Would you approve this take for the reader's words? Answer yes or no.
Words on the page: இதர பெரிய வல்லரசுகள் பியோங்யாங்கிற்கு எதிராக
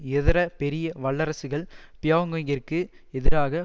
yes